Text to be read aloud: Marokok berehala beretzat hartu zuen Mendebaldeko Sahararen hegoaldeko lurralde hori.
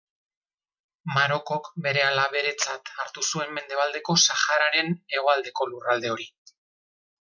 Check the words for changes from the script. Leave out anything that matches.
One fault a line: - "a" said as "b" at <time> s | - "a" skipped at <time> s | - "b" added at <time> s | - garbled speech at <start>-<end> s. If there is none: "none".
none